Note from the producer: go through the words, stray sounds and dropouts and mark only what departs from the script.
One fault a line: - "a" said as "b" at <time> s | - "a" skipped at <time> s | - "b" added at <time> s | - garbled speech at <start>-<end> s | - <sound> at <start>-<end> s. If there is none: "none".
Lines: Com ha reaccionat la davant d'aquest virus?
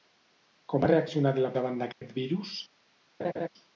- dropout at 1.9-2.0 s
- laugh at 3.2-3.5 s